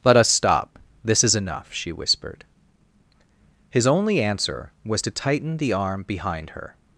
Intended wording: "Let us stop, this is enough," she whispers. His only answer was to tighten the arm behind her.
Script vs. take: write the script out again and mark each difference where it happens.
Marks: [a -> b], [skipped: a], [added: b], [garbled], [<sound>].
"Let us stop, this is enough," she [whispers. -> whispered] His only answer was to tighten the arm behind her.